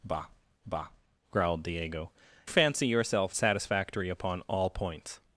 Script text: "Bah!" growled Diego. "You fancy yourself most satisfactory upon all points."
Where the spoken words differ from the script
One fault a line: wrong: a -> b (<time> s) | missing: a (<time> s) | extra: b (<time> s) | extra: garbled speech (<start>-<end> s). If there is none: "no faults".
extra: bah (0.6 s)
missing: You (2.1 s)
missing: most (3.4 s)